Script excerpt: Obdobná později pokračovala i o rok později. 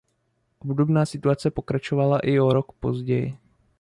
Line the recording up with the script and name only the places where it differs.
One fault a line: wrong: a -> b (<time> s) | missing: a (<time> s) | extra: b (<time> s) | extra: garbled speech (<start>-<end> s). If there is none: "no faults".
wrong: později -> situace (1.1 s)